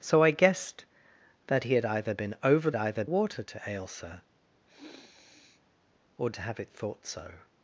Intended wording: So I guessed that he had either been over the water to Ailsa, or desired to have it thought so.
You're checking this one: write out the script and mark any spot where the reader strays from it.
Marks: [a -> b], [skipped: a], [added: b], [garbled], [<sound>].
So I guessed that he had either been over [the -> either] water to Ailsa, [sniff] or [skipped: desired] to have it thought so.